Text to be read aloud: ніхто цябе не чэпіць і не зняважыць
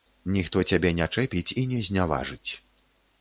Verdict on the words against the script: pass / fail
pass